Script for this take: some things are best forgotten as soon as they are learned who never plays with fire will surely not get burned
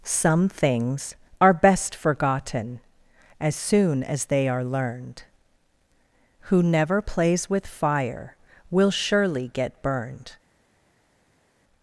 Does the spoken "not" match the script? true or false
false